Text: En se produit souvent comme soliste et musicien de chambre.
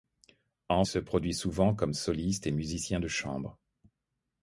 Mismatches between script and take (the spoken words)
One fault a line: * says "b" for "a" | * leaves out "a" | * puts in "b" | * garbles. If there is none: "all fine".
all fine